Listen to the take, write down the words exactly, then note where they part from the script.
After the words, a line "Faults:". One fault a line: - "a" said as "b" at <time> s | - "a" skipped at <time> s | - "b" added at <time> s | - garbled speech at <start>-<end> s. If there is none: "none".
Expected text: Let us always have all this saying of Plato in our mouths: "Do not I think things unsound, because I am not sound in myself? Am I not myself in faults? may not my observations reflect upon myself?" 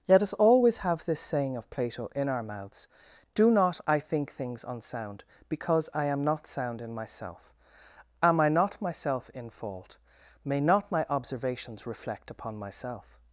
Let us always have this saying of Plato in our mouths: "Do not I think things unsound, because I am not sound in myself? Am I not myself in fault? may not my observations reflect upon myself?"
Faults:
- "all" skipped at 1.1 s
- "faults" said as "fault" at 9.5 s